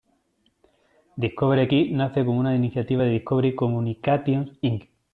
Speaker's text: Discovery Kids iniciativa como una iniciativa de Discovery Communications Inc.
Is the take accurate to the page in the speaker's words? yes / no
no